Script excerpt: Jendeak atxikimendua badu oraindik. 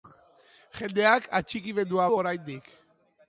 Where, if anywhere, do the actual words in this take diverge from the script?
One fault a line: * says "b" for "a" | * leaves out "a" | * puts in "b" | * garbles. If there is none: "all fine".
* leaves out "badu"